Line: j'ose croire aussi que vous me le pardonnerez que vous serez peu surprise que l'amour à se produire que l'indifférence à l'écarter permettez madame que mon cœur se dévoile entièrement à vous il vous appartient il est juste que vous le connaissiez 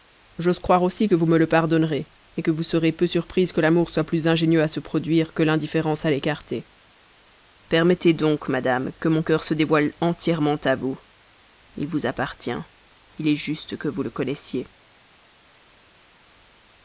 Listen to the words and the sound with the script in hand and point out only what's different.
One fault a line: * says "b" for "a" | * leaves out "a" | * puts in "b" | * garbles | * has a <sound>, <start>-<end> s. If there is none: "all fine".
* puts in "soit plus ingénieux"
* puts in "donc"